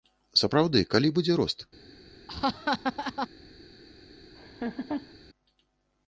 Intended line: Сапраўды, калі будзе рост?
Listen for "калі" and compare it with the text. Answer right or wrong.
right